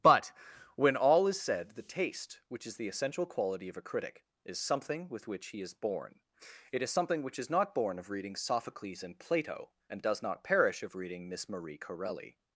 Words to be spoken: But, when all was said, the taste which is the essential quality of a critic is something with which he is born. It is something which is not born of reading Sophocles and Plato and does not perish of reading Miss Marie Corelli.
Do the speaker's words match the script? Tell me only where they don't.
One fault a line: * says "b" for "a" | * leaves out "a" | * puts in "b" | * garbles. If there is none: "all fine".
* says "is" for "was"